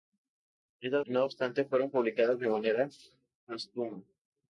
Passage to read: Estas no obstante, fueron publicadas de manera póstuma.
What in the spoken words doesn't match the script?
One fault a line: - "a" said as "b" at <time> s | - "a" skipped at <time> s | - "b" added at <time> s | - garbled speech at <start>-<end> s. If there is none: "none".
none